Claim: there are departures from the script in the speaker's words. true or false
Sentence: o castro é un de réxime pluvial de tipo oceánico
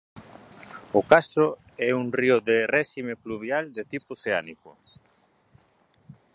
true